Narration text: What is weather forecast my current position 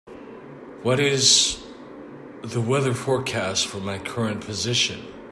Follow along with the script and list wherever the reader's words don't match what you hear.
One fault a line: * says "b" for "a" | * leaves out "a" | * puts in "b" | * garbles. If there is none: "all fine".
* puts in "the"
* puts in "for"